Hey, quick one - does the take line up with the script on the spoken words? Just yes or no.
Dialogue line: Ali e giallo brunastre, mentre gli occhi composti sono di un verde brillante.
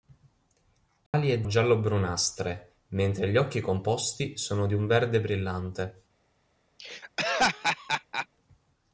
yes